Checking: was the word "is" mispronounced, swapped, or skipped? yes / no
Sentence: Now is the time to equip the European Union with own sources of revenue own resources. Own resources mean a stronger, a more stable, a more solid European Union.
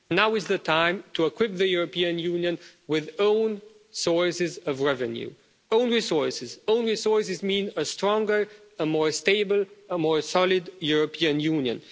no